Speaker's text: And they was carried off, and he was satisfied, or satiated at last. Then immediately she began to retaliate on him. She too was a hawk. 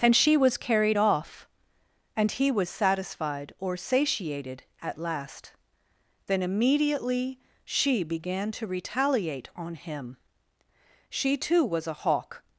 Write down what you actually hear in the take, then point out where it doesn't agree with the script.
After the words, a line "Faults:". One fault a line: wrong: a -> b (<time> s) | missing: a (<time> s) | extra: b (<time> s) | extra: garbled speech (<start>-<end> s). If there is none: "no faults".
And she was carried off, and he was satisfied, or satiated at last. Then immediately she began to retaliate on him. She too was a hawk.
Faults:
wrong: they -> she (0.1 s)